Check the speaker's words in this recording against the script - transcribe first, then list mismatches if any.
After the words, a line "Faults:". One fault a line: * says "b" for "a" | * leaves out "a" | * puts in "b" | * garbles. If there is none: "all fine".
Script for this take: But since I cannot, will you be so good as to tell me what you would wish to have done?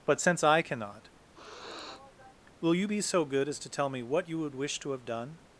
But since I cannot, will you be so good as to tell me what you would wish to have done?
Faults:
all fine